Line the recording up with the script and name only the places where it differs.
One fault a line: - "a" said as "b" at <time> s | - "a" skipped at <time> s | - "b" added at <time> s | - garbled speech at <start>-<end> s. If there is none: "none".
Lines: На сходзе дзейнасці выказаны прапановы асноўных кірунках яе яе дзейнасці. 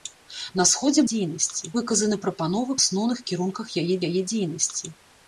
none